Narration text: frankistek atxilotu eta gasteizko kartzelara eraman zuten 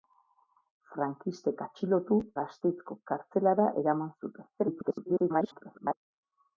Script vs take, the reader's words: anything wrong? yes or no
yes